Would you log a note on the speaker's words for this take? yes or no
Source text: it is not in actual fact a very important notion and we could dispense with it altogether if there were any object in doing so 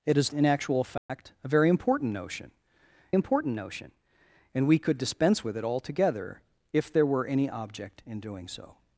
yes